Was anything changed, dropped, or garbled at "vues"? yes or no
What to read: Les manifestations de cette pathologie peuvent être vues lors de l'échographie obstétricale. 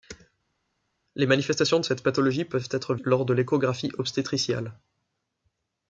yes